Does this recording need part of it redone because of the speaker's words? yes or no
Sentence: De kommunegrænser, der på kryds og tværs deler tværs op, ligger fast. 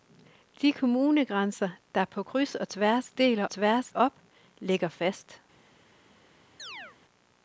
no